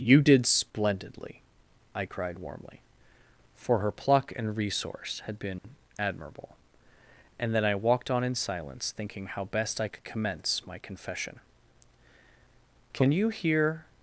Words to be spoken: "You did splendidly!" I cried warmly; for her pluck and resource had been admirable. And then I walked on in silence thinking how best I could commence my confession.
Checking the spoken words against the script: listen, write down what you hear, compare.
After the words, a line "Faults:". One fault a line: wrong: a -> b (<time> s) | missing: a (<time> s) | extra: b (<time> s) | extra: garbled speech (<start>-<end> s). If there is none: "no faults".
"You did splendidly!" I cried warmly; for her pluck and resource had been admirable. And then I walked on in silence thinking how best I could commence my confession. "Can you hear
Faults:
extra: Can you hear (12.9 s)